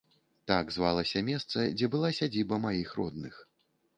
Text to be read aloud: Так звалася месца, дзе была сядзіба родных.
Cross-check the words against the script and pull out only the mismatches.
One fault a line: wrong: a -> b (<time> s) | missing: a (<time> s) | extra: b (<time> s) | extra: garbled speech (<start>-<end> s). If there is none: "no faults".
extra: маіх (2.6 s)